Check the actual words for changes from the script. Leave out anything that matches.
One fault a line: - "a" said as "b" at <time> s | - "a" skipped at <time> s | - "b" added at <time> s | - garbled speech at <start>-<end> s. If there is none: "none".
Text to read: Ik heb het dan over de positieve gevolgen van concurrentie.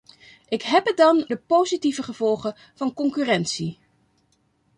- "over" skipped at 1.3 s